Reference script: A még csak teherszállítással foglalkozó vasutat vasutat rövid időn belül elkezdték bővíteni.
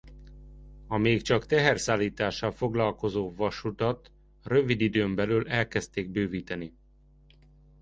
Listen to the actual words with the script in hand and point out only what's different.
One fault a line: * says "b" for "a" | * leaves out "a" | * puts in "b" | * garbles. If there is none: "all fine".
* leaves out "vasutat"